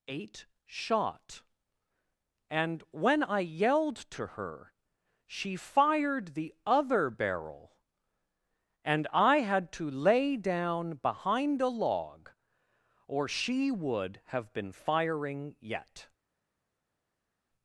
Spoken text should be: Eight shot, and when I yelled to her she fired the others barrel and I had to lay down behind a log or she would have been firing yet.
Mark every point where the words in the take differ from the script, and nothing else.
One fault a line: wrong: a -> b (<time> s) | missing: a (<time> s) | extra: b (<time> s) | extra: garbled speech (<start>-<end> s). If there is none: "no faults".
wrong: others -> other (6.7 s)